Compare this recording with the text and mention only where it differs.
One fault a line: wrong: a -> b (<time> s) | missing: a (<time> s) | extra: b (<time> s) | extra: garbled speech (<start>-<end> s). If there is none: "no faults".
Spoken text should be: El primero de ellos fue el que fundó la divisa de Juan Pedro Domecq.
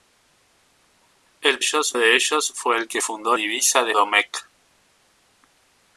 wrong: primero -> ellos (1.6 s)
missing: la (3.4 s)
missing: Juan Pedro (3.9 s)